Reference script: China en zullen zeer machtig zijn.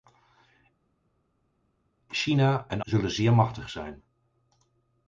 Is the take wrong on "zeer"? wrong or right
right